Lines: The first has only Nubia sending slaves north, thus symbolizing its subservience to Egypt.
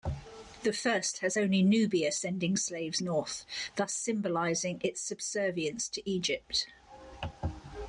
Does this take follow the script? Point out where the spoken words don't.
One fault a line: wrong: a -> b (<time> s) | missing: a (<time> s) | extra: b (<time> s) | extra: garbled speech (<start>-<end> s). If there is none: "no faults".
no faults